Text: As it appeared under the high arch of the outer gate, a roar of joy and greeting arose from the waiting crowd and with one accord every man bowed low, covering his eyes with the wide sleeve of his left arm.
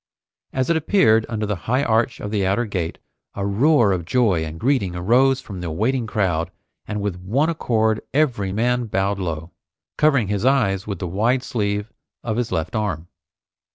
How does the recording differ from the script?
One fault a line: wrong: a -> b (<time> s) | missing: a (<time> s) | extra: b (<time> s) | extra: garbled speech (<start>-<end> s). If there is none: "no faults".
no faults